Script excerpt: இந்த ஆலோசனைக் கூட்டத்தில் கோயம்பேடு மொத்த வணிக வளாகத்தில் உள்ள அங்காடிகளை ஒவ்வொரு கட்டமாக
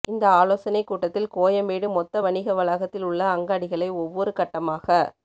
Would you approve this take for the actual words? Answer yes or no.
yes